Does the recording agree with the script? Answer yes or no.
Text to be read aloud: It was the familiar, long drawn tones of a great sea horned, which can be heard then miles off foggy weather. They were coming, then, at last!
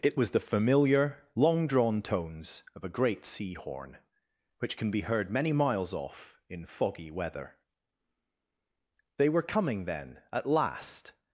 no